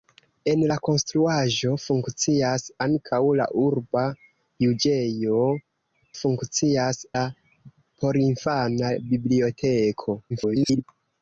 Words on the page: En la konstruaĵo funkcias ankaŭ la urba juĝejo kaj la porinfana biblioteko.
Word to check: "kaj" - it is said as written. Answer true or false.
false